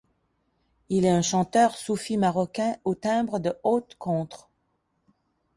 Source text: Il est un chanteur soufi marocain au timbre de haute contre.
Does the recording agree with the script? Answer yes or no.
yes